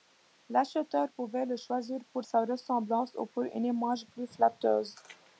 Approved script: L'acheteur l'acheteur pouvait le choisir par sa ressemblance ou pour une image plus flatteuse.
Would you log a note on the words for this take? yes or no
yes